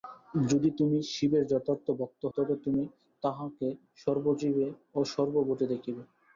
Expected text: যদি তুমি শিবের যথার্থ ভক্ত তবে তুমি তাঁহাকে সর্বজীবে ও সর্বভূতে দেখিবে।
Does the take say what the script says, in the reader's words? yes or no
yes